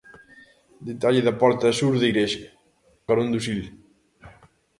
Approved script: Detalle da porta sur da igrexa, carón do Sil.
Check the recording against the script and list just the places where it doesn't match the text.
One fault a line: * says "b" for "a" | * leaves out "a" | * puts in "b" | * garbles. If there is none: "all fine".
all fine